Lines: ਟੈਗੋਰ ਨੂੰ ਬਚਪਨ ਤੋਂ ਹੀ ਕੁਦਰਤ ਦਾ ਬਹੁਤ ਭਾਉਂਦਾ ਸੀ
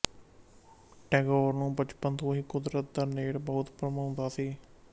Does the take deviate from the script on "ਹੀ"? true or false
false